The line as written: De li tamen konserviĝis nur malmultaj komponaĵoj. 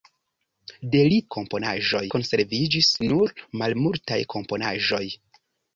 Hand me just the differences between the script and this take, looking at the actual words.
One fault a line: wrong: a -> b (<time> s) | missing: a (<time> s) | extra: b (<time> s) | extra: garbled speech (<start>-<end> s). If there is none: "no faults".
wrong: tamen -> komponaĵoj (1.4 s)